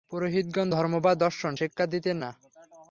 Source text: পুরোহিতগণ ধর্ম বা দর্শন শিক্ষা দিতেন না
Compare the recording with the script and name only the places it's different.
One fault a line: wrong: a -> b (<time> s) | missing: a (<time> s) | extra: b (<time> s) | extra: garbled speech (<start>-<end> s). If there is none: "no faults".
no faults